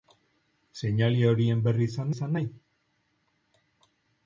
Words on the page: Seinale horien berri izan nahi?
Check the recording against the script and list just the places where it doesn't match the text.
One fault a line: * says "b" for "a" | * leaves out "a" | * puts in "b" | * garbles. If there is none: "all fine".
* puts in "izan"